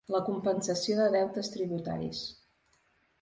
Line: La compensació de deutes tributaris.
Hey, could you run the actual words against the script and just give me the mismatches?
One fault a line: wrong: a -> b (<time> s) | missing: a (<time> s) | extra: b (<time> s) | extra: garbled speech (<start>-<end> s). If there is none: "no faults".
no faults